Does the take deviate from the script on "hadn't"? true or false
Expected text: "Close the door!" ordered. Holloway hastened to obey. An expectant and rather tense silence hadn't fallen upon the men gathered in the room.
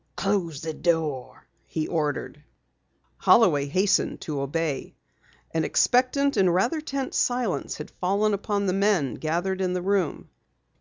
true